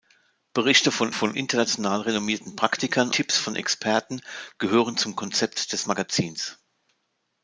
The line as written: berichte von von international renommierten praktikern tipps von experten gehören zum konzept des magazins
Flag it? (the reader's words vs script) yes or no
no